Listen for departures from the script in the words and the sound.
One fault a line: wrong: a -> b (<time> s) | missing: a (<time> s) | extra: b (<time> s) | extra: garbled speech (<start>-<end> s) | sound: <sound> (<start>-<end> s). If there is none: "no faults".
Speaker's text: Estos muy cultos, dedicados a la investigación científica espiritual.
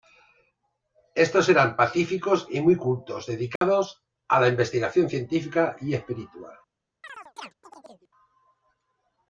extra: eran pacíficos y (1.5 s)
sound: dropout (3.6-3.6 s)
extra: y (5.8 s)
sound: chirp (7.0-8.1 s)